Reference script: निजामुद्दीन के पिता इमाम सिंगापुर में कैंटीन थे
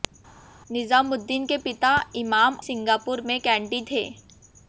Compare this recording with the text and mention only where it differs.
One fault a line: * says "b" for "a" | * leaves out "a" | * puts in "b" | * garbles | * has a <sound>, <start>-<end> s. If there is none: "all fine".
all fine